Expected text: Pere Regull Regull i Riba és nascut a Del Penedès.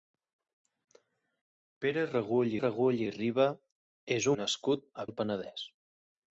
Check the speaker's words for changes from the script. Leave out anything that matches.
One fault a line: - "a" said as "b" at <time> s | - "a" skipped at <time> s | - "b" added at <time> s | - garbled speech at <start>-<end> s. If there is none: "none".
none